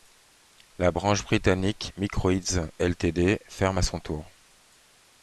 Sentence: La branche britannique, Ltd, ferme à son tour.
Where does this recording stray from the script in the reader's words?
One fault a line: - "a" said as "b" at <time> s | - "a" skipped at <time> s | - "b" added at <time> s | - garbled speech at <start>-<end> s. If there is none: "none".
- "Microïds" added at 2.0 s